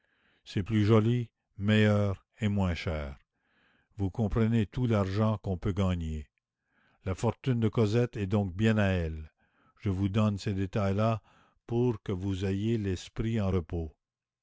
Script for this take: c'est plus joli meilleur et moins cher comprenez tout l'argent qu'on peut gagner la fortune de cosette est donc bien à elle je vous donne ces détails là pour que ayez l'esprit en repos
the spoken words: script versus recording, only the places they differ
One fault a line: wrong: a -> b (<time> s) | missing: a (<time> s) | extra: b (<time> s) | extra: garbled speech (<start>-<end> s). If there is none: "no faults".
extra: vous (4.0 s)
extra: vous (12.1 s)